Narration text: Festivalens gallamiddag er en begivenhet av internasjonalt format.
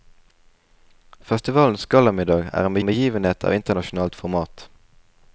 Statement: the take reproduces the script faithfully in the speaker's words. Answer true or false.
false